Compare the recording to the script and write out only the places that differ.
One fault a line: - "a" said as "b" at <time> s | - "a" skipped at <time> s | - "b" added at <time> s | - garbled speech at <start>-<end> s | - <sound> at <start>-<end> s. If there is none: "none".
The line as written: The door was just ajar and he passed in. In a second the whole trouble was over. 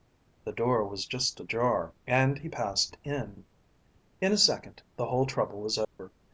- dropout at 5.8-6.0 s